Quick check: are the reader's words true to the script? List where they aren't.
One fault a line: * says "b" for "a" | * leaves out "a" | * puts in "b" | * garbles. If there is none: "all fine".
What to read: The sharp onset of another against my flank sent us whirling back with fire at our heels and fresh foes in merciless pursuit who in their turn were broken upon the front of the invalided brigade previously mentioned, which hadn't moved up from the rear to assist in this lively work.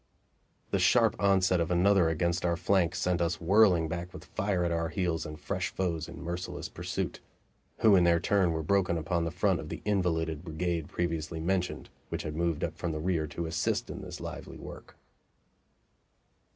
* says "our" for "my"
* says "had" for "hadn't"